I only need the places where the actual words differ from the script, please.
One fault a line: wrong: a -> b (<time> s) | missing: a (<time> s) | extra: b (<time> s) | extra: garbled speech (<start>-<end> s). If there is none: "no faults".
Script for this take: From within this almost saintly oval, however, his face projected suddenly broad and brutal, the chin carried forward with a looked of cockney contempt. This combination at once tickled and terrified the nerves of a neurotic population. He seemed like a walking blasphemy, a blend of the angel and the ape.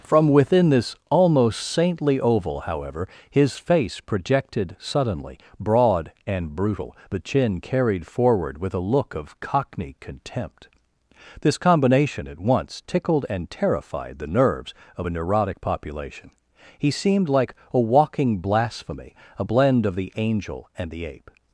wrong: looked -> look (8.8 s)